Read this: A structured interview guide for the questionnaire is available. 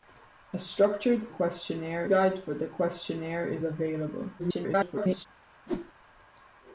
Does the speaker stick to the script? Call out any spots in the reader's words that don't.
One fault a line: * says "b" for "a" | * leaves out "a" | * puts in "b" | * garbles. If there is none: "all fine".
* says "questionnaire" for "interview"
* garbles